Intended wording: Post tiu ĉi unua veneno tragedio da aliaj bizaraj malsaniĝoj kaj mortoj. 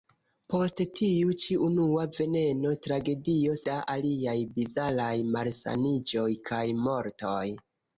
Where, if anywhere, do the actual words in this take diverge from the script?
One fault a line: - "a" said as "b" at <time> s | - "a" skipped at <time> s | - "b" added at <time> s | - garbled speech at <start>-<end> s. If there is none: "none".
none